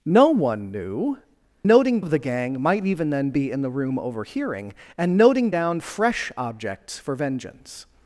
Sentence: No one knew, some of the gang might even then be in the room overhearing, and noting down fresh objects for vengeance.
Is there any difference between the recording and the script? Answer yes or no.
yes